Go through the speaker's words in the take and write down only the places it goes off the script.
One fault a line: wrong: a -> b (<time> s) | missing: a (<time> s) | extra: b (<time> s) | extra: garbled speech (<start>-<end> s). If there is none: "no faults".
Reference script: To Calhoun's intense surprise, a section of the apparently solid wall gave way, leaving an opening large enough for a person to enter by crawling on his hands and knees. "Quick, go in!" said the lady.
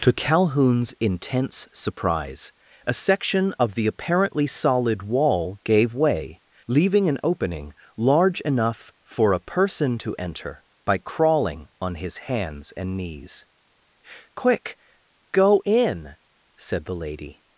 no faults